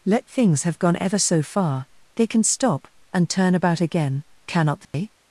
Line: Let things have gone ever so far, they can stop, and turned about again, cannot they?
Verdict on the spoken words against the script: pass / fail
fail